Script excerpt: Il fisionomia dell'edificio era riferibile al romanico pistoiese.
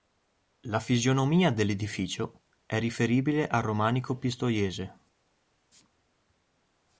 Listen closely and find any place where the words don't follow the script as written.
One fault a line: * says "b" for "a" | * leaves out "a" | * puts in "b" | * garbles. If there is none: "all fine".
* says "La" for "Il"
* says "è" for "era"